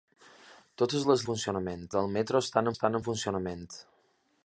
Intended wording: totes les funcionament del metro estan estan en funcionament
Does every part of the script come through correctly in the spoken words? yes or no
yes